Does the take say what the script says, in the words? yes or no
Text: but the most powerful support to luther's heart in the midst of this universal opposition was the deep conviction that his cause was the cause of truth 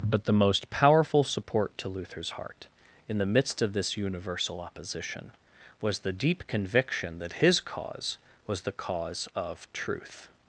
yes